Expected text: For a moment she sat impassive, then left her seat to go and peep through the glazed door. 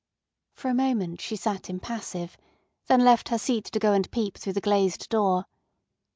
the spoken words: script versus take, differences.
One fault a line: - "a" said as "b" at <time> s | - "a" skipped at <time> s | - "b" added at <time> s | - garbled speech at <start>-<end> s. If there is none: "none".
none